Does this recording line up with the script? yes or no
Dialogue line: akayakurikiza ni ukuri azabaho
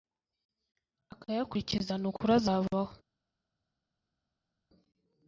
yes